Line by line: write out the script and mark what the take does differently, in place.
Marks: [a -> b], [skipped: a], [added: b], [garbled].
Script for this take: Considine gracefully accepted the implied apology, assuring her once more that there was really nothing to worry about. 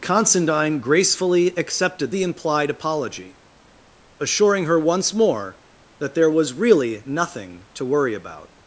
Considine gracefully accepted the implied apology, assuring her once more that there was really nothing to worry about.